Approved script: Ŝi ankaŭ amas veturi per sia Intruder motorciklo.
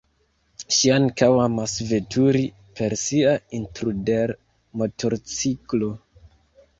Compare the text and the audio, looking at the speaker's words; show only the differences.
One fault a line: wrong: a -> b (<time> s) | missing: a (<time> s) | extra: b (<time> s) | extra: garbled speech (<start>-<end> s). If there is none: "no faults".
no faults